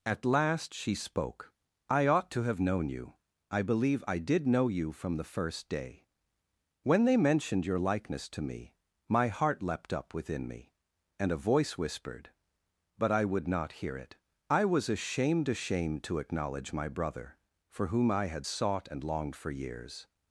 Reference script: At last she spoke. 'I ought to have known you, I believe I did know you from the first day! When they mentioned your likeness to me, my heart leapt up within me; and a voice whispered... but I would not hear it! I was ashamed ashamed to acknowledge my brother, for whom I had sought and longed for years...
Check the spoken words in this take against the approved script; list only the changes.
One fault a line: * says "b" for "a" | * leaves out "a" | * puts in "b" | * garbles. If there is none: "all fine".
all fine